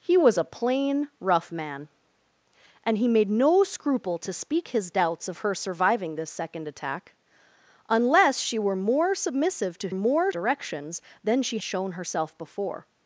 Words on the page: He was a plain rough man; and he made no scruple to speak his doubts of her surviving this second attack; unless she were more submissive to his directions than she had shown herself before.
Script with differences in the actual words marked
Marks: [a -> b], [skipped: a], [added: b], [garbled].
He was a plain rough man; and he made no scruple to speak his doubts of her surviving this second attack; unless she were more submissive to [his -> more] directions than she [skipped: had] shown herself before.